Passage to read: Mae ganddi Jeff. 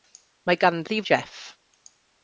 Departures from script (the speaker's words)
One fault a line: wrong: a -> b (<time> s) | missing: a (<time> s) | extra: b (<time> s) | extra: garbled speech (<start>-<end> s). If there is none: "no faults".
no faults